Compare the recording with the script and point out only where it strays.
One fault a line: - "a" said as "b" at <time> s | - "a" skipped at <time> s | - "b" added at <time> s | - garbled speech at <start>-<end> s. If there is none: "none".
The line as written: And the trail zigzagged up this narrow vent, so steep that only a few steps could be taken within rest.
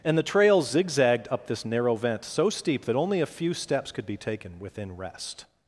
none